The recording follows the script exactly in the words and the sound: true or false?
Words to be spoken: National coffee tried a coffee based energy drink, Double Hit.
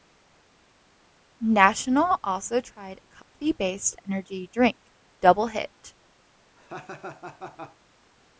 false